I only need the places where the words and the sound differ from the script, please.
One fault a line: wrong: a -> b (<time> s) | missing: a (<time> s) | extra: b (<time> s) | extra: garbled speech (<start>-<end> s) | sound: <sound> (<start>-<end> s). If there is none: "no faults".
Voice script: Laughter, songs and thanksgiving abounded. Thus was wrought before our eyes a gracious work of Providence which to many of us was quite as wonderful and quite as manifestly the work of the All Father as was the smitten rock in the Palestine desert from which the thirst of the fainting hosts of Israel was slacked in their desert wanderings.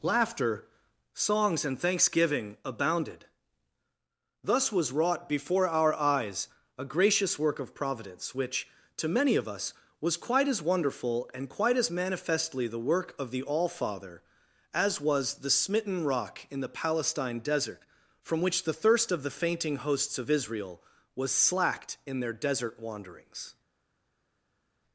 no faults